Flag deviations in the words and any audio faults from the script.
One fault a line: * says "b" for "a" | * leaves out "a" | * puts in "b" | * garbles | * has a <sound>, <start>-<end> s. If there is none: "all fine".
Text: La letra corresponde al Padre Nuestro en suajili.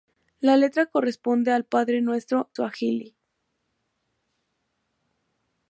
* leaves out "en"